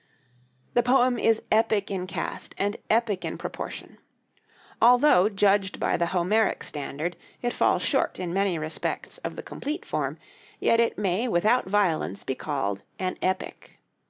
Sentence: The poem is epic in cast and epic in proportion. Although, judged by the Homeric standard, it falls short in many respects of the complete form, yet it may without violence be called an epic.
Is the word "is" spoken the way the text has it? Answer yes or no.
yes